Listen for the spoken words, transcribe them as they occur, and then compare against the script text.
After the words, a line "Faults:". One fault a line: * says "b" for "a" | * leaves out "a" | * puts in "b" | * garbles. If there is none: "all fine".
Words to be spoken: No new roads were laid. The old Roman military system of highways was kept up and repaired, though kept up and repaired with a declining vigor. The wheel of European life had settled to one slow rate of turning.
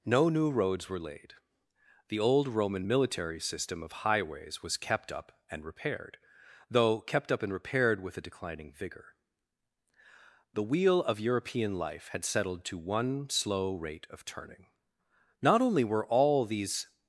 No new roads were laid. The old Roman military system of highways was kept up and repaired, though kept up and repaired with a declining vigor. The wheel of European life had settled to one slow rate of turning. Not only were all these
Faults:
* puts in "Not only were all these"